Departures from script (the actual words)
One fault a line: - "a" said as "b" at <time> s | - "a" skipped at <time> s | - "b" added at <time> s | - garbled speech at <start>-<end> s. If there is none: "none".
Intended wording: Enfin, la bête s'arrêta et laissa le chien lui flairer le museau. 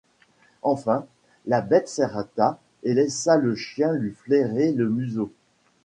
none